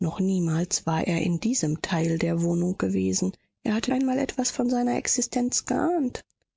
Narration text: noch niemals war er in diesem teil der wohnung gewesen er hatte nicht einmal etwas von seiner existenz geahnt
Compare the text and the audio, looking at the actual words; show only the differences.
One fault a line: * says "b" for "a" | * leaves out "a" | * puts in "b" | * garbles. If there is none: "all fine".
* leaves out "nicht"